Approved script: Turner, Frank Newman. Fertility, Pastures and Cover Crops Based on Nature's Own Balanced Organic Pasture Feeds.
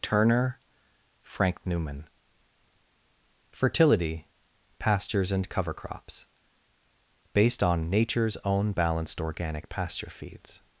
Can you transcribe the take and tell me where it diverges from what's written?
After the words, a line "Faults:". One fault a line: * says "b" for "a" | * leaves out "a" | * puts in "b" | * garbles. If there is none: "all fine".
Turner, Frank Newman. Fertility, Pastures and Cover Crops Based on Nature's Own Balanced Organic Pasture Feeds.
Faults:
all fine